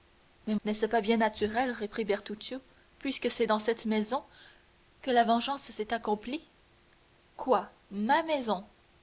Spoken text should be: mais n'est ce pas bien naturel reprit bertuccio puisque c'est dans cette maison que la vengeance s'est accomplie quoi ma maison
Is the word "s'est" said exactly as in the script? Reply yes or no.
yes